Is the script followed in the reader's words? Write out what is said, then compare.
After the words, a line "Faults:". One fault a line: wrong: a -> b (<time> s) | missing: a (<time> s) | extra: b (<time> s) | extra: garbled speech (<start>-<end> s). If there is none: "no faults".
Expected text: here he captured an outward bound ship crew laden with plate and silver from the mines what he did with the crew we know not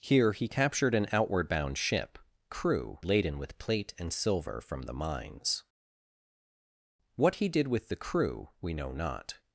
here he captured an outward bound ship crew laden with plate and silver from the mines what he did with the crew we know not
Faults:
no faults